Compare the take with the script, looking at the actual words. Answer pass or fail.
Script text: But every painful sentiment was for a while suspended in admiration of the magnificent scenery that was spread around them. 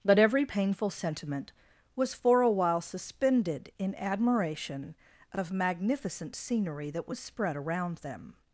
fail